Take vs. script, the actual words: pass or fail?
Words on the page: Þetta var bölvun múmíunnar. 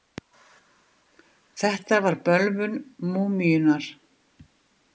pass